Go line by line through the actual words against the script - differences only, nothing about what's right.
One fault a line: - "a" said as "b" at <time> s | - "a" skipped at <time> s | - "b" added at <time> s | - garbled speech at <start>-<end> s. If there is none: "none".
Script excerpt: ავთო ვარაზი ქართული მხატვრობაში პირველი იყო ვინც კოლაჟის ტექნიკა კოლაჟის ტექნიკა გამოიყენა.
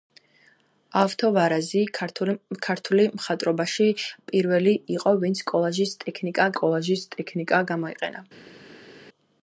none